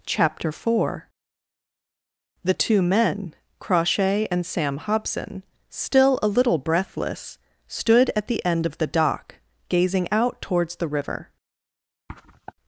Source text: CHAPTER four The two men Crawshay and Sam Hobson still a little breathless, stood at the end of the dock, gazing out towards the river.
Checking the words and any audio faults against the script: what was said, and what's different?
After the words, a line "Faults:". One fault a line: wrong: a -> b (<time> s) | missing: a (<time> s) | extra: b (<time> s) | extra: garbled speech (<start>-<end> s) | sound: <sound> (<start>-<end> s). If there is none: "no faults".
CHAPTER four The two men Crawshay and Sam Hobson still a little breathless, stood at the end of the dock, gazing out towards the river.
Faults:
sound: sniff (12.1-12.5 s)